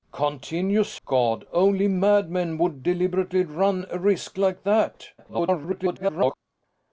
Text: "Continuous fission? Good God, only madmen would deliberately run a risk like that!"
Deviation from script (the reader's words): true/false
true